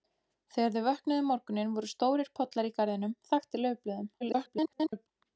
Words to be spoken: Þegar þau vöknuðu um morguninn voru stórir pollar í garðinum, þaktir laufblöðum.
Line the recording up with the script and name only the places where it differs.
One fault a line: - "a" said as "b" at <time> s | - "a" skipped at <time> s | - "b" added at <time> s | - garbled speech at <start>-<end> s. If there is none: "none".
- garbled speech at 4.2-5.1 s